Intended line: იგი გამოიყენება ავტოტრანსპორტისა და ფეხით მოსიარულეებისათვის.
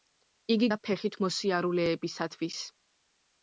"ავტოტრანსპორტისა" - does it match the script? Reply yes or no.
no